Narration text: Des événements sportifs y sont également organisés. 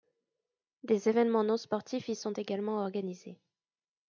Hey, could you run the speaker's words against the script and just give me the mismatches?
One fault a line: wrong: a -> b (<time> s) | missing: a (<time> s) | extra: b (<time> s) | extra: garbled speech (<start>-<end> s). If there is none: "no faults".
extra: non (1.4 s)